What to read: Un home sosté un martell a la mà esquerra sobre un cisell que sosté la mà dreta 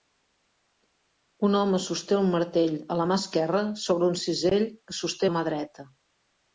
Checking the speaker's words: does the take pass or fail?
pass